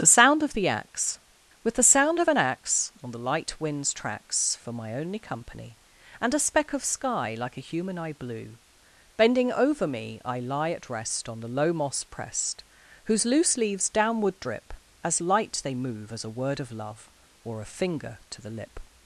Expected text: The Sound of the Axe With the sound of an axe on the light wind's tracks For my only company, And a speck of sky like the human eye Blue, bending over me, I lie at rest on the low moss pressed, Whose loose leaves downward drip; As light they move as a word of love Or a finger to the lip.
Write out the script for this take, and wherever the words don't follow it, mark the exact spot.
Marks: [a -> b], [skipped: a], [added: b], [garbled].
The Sound of the Axe With the sound of an axe on the light wind's tracks For my only company, And a speck of sky like [the -> a] human eye Blue, bending over me, I lie at rest on the low moss pressed, Whose loose leaves downward drip; As light they move as a word of love Or a finger to the lip.